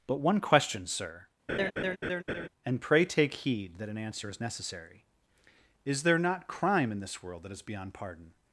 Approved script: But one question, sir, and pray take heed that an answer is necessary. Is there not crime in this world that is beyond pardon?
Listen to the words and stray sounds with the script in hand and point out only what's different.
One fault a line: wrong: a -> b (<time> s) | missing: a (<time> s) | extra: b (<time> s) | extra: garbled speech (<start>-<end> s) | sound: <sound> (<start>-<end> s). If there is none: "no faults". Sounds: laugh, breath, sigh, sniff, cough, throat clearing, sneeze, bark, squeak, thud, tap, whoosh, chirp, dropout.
sound: laugh (1.5-2.5 s)